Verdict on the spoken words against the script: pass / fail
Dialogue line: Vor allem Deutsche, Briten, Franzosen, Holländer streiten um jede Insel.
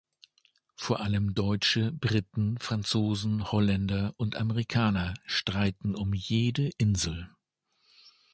fail